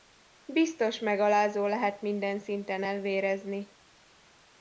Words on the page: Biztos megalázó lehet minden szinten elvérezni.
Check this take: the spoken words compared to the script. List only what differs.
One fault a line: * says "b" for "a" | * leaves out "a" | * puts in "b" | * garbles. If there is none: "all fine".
all fine